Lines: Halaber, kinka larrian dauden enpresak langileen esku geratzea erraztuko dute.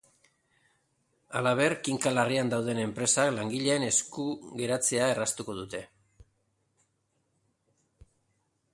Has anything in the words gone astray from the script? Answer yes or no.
no